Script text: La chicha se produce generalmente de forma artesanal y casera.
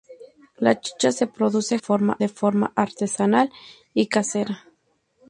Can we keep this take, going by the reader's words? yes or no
no